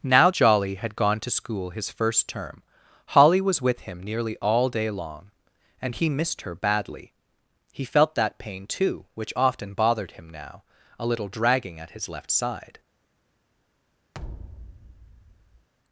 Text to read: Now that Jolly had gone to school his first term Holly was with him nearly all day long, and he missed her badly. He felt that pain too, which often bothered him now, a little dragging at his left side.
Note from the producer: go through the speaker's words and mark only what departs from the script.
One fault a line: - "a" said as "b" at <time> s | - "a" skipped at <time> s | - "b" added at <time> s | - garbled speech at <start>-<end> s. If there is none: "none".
- "that" skipped at 0.3 s